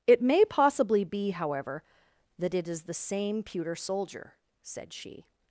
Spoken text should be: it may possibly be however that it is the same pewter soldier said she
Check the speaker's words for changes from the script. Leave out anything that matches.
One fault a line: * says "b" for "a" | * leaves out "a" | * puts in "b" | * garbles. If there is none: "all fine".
all fine